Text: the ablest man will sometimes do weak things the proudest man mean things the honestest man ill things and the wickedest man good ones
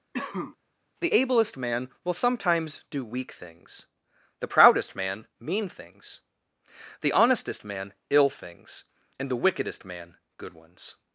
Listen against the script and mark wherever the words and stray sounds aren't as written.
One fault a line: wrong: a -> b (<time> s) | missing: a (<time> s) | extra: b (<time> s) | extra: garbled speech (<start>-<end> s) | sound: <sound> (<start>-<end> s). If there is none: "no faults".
sound: cough (0.1-0.6 s)